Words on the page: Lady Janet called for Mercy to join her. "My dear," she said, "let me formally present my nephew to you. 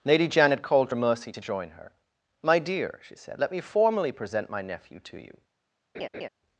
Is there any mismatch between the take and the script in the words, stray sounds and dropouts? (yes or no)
yes